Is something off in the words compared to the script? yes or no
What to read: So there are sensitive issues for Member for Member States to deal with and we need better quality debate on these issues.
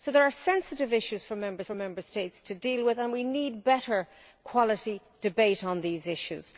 no